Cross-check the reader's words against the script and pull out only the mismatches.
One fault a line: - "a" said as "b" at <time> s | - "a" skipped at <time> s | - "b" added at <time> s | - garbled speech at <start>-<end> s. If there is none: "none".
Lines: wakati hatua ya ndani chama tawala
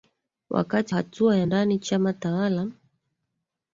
none